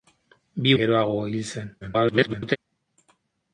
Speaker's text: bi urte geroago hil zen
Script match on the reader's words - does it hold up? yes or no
no